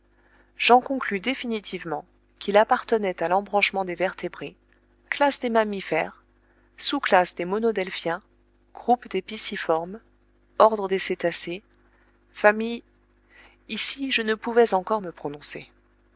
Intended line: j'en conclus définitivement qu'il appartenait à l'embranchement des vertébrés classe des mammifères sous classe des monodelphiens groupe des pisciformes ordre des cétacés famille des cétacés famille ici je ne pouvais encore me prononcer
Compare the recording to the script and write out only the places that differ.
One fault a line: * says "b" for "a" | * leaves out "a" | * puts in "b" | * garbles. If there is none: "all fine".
* leaves out "des cétacés famille"